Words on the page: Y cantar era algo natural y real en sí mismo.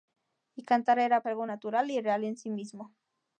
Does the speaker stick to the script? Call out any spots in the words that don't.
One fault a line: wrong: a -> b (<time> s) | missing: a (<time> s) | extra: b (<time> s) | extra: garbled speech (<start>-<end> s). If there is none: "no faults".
no faults